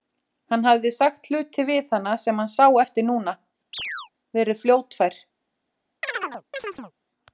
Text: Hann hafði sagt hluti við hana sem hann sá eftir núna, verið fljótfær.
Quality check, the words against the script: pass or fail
pass